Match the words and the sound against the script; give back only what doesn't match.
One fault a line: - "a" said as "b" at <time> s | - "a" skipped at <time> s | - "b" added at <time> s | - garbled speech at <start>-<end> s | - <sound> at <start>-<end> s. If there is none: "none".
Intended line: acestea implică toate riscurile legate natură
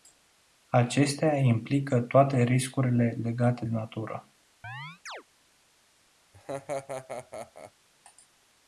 - chirp at 4.6-5.2 s
- laugh at 6.3-7.7 s